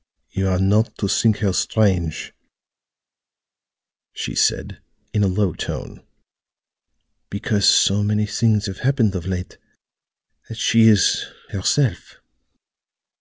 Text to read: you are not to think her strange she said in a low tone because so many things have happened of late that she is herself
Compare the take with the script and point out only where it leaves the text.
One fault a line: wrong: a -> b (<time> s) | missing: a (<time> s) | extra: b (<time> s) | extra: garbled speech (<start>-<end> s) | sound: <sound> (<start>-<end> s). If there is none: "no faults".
no faults